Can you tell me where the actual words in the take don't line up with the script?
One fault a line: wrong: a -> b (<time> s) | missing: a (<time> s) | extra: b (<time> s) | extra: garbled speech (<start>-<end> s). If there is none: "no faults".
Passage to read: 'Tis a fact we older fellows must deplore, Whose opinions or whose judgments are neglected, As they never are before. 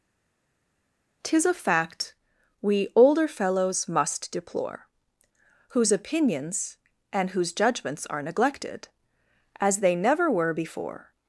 wrong: or -> and (7.1 s)
wrong: are -> were (10.3 s)